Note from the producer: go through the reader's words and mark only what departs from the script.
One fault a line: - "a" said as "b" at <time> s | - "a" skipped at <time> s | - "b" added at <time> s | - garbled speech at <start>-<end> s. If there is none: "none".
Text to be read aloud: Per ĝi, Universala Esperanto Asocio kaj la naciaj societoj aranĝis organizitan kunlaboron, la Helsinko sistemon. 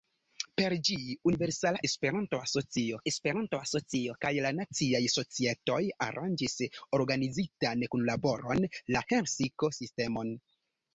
- "Esperanto Asocio" added at 3.1 s